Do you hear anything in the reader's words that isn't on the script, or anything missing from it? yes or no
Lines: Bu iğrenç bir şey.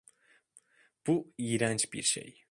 no